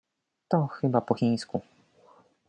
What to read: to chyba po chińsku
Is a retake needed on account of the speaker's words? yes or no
no